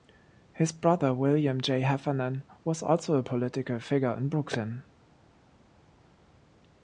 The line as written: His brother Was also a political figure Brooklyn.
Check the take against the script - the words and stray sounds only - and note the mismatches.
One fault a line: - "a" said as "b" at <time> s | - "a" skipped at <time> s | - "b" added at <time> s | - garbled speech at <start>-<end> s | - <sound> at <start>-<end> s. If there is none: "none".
- "William J Heffernan" added at 1.1 s
- "in" added at 4.2 s